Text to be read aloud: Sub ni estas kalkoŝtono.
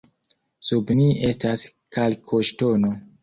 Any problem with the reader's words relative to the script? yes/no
no